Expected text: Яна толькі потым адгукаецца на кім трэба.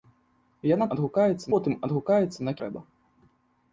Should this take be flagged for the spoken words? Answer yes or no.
yes